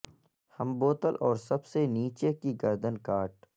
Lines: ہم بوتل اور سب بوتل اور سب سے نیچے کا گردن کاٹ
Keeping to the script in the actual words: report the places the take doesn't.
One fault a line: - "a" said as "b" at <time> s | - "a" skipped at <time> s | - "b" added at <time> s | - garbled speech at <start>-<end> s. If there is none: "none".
- "بوتل اور سب" skipped at 1.6 s
- "کا" said as "کی" at 2.3 s